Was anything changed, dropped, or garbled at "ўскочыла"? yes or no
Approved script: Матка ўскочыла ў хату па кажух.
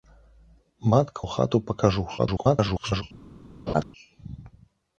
yes